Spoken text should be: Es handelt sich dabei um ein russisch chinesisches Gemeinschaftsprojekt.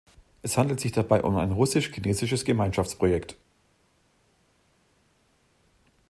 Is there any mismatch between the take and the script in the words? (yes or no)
no